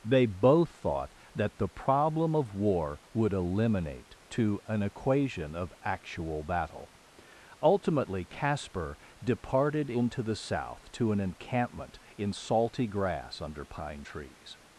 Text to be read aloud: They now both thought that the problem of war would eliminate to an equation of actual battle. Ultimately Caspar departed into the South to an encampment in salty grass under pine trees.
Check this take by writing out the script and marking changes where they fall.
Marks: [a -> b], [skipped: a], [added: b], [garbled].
They [skipped: now] both thought that the problem of war would eliminate to an equation of actual battle. Ultimately Caspar departed into the South to an encampment in salty grass under pine trees.